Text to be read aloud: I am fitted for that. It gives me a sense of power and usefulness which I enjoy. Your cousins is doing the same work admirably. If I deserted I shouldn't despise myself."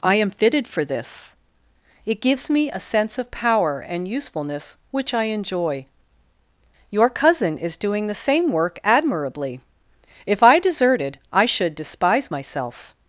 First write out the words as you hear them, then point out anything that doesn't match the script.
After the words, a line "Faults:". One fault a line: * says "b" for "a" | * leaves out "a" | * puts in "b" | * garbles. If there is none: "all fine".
I am fitted for this. It gives me a sense of power and usefulness which I enjoy. Your cousin is doing the same work admirably. If I deserted I should despise myself."
Faults:
* says "this" for "that"
* says "cousin" for "cousins"
* says "should" for "shouldn't"